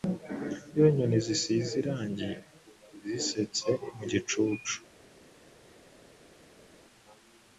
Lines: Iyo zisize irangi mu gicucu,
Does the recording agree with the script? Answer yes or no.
no